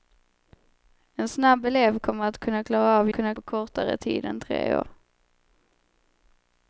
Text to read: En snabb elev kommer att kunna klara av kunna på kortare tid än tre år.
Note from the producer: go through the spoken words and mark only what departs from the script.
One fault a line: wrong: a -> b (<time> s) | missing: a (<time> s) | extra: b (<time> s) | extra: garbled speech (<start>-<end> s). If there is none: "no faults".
no faults